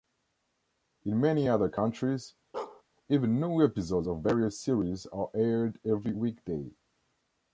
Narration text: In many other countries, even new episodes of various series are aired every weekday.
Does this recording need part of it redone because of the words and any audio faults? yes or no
yes